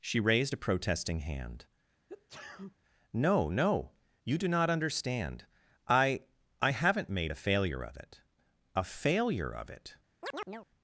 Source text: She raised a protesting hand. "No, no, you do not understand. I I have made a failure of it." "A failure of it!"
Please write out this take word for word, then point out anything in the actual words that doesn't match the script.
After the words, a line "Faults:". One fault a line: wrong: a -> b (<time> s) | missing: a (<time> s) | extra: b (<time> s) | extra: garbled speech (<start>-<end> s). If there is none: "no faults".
She raised a protesting hand. "No, no, you do not understand. I I haven't made a failure of it." "A failure of it!"
Faults:
wrong: have -> haven't (6.7 s)